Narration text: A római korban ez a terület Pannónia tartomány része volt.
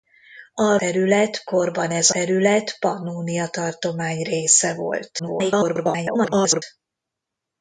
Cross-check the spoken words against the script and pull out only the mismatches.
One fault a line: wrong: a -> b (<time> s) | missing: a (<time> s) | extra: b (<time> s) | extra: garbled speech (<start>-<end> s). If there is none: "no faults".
wrong: római -> terület (0.8 s)
missing: a (2.1 s)
extra: garbled speech (5.2-6.6 s)